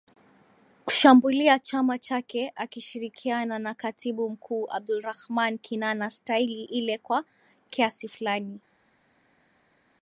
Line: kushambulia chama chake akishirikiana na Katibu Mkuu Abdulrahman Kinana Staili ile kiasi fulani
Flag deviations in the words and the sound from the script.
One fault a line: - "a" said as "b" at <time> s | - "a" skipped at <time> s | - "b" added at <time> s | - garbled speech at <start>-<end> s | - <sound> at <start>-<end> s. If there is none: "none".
- "kwa" added at 7.0 s